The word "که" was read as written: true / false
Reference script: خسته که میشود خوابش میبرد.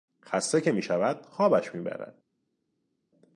true